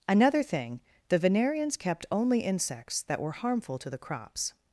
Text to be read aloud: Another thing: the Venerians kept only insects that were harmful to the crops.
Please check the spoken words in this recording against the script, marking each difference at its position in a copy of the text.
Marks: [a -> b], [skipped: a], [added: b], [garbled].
Another thing: the Venerians kept only insects that were harmful to the crops.